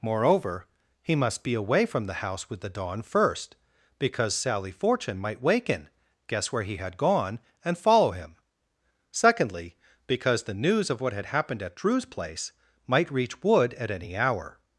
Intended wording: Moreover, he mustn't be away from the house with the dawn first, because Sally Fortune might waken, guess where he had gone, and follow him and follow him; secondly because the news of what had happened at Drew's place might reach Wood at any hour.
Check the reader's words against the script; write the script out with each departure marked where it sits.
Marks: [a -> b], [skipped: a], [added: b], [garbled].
Moreover, he [mustn't -> must] be away from the house with the dawn first, because Sally Fortune might waken, guess where he had gone, and follow him [skipped: and follow him;] secondly because the news of what had happened at Drew's place might reach Wood at any hour.